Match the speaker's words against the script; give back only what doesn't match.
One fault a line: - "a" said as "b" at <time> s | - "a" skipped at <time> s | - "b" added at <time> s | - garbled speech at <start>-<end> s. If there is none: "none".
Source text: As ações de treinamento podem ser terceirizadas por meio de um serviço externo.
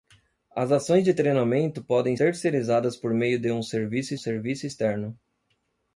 - "ser" skipped at 2.2 s
- "serviço" added at 4.1 s